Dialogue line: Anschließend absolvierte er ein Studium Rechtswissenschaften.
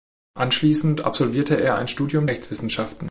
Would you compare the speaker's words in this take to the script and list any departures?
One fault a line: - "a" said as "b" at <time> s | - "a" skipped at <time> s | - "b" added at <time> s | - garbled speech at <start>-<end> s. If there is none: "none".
none